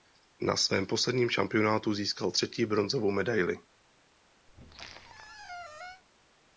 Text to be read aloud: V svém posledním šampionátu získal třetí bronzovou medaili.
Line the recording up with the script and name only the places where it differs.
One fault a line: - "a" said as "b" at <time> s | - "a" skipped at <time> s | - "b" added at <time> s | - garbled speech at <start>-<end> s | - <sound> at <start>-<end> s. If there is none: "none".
- "V" said as "Na" at 0.4 s
- squeak at 4.5-6.0 s